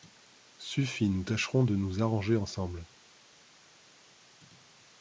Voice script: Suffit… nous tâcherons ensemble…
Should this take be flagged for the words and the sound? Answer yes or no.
yes